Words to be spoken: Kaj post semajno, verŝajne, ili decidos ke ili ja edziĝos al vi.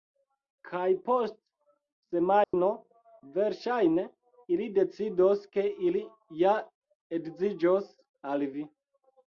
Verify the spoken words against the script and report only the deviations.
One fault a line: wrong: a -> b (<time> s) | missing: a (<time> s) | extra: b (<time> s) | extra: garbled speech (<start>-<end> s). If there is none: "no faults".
no faults